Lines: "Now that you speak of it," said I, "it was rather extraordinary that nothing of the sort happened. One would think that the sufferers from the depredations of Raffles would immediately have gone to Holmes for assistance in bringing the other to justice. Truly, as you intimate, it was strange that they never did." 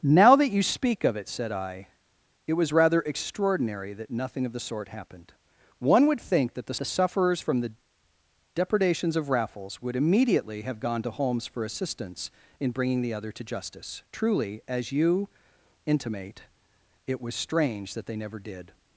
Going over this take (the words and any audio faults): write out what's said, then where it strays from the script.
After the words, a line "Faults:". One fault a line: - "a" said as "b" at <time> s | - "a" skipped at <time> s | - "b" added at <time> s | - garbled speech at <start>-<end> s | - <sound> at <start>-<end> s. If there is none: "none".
"Now that you speak of it," said I, "it was rather extraordinary that nothing of the sort happened. One would think that the the sufferers from the depredations of Raffles would immediately have gone to Holmes for assistance in bringing the other to justice. Truly, as you intimate, it was strange that they never did."
Faults:
- "the" added at 6.8 s